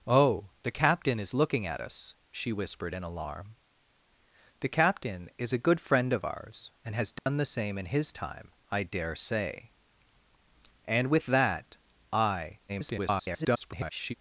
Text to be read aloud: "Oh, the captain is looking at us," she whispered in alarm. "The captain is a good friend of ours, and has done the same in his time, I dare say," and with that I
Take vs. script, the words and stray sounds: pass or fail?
fail